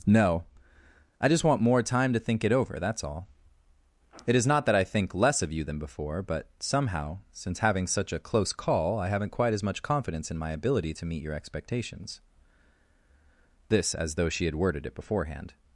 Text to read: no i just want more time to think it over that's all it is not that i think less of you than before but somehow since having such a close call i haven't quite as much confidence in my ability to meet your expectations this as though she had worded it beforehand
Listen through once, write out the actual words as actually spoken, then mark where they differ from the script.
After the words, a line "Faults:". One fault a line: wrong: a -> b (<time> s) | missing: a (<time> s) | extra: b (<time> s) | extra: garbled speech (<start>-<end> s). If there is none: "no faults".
no i just want more time to think it over that's all it is not that i think less of you than before but somehow since having such a close call i haven't quite as much confidence in my ability to meet your expectations this as though she had worded it beforehand
Faults:
no faults